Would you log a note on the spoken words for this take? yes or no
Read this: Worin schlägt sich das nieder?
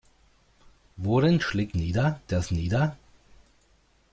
yes